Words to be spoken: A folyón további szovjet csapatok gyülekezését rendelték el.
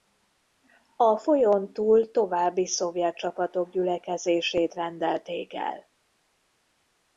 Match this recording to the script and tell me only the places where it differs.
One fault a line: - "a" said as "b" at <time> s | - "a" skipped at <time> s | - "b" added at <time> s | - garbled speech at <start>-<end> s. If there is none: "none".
- "túl" added at 1.7 s